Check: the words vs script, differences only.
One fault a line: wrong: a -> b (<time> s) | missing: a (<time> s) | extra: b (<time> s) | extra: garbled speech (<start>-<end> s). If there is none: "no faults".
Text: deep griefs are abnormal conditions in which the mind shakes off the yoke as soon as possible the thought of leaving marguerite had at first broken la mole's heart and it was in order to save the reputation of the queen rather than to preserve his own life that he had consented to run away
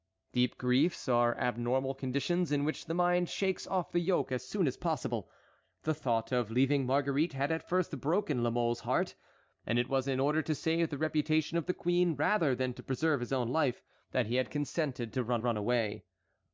extra: run (15.4 s)